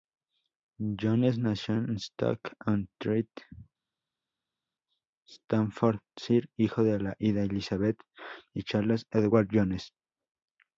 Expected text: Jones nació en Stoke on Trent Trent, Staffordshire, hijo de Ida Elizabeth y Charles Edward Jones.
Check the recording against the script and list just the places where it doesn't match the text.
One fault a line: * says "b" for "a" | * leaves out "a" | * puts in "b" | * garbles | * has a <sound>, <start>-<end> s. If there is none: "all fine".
* leaves out "Trent"